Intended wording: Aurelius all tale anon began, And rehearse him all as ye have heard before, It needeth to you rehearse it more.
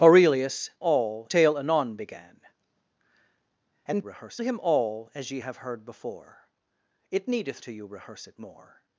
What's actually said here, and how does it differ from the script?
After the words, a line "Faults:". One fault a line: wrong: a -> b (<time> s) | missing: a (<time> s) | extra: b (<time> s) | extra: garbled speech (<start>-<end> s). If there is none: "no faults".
Aurelius all tale anon began, And rehearse him all as ye have heard before, It needeth to you rehearse it more.
Faults:
no faults